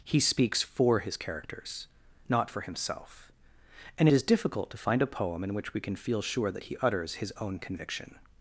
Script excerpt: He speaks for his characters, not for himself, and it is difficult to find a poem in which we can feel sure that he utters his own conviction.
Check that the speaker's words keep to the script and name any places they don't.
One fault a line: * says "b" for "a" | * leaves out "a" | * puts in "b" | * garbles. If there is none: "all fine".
* leaves out "it"